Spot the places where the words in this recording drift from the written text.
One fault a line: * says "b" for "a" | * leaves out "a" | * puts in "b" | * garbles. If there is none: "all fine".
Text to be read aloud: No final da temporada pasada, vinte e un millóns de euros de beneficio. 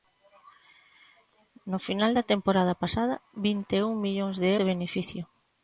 * leaves out "euros"